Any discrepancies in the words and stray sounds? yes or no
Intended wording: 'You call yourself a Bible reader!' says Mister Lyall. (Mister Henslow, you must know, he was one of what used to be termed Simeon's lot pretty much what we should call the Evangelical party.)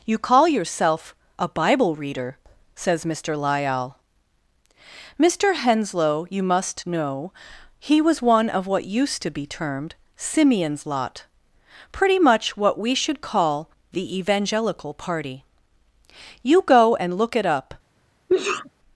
yes